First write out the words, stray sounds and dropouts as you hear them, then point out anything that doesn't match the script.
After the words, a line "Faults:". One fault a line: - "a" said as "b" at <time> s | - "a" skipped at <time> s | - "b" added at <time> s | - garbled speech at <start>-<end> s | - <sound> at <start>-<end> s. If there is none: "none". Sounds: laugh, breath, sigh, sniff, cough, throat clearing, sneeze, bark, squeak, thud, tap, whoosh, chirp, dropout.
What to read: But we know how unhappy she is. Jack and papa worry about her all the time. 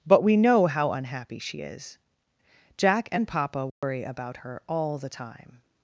But we know how unhappy she is. Jack and papa worry about her all the time.
Faults:
- dropout at 3.7-3.8 s